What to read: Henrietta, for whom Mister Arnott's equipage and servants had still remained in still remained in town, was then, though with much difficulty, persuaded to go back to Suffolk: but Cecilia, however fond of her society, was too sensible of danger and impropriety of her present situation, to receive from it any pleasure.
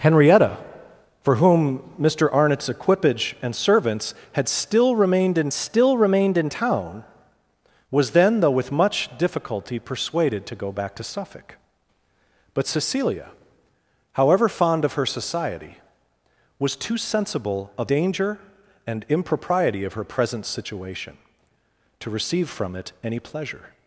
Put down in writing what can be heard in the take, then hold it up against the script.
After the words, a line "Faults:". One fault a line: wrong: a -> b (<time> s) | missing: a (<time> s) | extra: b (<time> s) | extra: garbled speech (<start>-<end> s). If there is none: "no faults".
Henrietta, for whom Mister Arnott's equipage and servants had still remained in still remained in town, was then, though with much difficulty, persuaded to go back to Suffolk: but Cecilia, however fond of her society, was too sensible of danger and impropriety of her present situation, to receive from it any pleasure.
Faults:
no faults